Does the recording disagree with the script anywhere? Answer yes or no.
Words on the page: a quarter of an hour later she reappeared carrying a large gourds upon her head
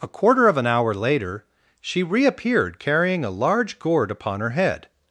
yes